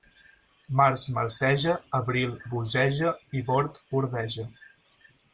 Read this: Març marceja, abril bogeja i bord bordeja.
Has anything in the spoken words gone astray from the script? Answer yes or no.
no